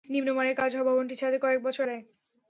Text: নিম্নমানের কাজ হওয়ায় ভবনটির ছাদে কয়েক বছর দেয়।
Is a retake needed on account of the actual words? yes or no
no